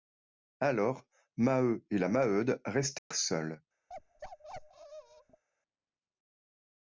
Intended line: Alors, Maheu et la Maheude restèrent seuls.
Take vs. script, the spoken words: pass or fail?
pass